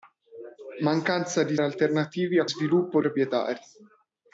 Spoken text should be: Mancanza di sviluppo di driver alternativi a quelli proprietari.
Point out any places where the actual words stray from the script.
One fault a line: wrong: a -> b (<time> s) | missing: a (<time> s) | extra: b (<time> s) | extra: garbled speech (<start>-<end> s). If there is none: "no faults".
missing: sviluppo di driver (1.6 s)
wrong: quelli -> sviluppo (2.4 s)